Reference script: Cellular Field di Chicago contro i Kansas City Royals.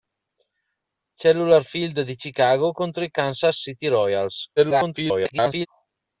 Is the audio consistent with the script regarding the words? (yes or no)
no